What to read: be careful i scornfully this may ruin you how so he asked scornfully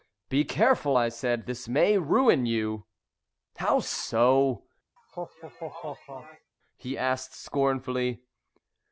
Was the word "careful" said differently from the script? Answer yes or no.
no